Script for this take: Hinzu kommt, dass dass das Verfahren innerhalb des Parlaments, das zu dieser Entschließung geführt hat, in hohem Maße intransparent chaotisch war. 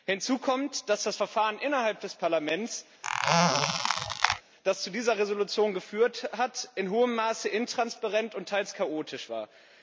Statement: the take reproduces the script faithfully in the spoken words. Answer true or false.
false